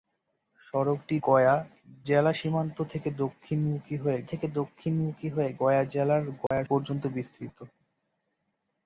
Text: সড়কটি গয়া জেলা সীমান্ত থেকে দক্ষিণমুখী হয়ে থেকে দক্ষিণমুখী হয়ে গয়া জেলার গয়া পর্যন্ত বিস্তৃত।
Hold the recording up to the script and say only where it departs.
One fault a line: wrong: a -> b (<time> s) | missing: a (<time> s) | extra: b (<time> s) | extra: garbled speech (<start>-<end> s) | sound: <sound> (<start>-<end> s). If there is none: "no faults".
sound: dropout (6.5-6.5 s)